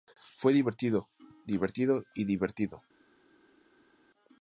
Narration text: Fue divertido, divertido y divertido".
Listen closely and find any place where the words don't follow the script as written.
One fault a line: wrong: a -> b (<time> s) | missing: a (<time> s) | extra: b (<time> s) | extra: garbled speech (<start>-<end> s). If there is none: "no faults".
no faults